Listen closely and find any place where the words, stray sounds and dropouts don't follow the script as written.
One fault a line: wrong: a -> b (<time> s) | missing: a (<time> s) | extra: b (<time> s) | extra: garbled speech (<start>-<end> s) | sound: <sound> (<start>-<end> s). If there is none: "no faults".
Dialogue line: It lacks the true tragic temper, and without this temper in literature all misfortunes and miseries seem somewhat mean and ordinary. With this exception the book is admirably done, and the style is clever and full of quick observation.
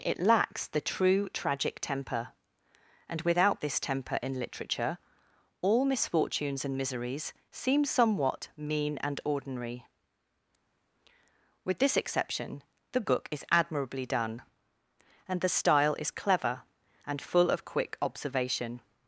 no faults